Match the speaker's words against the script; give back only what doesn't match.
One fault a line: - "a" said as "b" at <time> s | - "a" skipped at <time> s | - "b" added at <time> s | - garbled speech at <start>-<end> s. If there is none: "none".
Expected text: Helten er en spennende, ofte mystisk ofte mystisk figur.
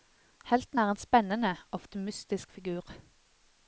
- "ofte mystisk" skipped at 2.5 s